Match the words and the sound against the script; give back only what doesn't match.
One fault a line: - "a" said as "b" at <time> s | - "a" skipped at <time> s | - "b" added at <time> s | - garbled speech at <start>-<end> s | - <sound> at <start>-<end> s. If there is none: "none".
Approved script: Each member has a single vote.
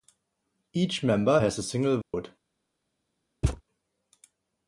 - dropout at 2.0-2.1 s
- thud at 3.4-3.6 s